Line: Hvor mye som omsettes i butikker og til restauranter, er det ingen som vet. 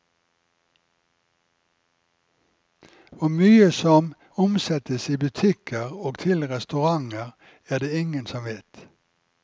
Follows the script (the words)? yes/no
yes